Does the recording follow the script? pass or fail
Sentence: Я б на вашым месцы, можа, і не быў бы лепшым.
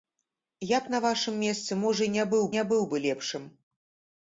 fail